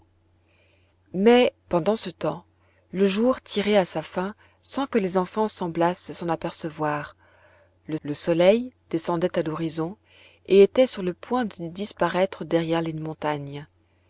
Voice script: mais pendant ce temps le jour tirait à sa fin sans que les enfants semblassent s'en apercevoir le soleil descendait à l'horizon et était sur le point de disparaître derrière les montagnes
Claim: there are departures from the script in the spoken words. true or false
true